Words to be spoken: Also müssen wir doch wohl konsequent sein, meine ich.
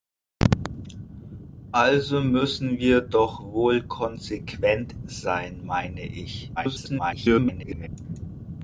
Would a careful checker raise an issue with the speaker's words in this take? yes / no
yes